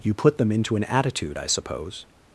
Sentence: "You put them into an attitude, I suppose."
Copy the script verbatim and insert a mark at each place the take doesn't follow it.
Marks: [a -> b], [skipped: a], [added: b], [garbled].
"You put them into an attitude, I suppose."